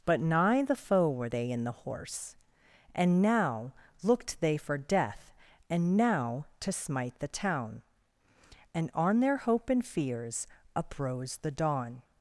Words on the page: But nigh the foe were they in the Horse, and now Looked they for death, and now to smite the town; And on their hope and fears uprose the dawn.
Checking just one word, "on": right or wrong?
right